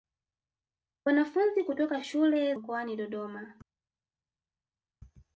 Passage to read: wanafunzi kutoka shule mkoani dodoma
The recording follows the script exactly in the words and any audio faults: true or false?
true